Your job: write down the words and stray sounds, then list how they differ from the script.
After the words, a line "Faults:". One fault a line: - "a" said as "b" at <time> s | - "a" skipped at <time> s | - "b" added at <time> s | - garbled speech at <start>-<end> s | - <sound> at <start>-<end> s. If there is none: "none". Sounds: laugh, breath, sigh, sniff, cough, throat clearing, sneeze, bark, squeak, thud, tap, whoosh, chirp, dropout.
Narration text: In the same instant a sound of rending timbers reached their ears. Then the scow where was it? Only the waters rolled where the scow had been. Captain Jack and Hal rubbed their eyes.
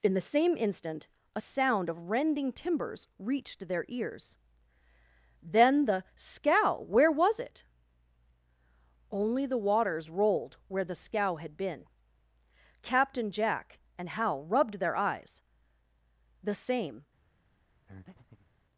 In the same instant a sound of rending timbers reached their ears. Then the scow where was it? Only the waters rolled where the scow had been. Captain Jack and Hal rubbed their eyes. "The same
Faults:
- "The same" added at 16.4 s
- breath at 17.9-18.5 s